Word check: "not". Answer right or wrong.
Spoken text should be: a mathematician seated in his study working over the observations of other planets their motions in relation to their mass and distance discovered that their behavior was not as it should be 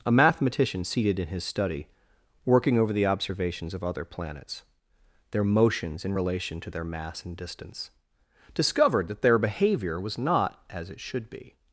right